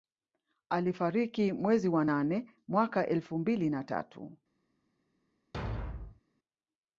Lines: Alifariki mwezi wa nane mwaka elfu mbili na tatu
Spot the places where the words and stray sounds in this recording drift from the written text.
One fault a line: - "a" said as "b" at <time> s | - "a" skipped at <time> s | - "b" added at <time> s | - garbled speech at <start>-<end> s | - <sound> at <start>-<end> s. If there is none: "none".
- thud at 5.5-6.2 s